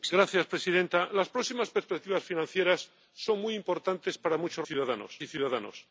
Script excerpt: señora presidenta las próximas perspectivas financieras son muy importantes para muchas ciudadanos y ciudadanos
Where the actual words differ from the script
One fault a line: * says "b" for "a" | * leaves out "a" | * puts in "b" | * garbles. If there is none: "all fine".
all fine